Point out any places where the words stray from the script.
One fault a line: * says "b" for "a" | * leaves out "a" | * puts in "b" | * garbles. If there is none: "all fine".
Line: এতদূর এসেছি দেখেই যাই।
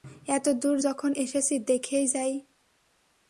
* puts in "যখন"